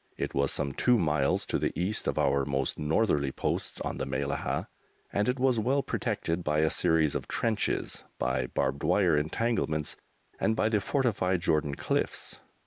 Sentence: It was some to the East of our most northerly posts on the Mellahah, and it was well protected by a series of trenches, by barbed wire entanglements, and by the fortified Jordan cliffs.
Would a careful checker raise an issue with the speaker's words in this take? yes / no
yes